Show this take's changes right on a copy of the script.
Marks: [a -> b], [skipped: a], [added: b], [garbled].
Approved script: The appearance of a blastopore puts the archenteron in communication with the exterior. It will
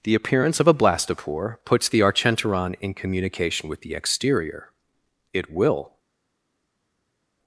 The appearance of a blastopore puts the archenteron in communication with the exterior. It will